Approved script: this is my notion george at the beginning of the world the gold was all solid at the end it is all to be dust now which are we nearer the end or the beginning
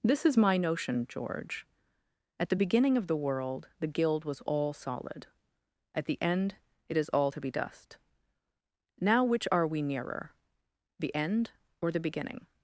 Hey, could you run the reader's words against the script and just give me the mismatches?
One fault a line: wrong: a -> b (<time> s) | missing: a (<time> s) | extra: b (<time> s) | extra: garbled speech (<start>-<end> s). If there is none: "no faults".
wrong: gold -> guild (3.9 s)